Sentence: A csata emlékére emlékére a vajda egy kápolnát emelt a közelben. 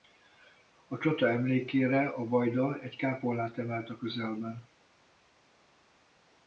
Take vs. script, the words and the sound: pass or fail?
fail